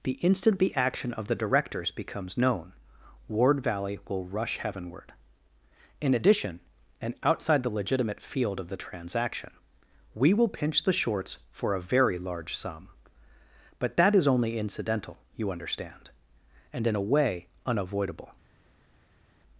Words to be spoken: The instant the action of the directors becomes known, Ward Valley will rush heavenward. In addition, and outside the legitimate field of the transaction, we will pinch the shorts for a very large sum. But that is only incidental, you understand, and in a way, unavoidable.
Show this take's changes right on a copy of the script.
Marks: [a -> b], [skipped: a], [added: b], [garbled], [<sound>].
The instant the action of the directors becomes known, Ward Valley will rush heavenward. In addition, and outside the legitimate field of the transaction, we will pinch the shorts for a very large sum. But that is only incidental, you understand, and in a way, unavoidable.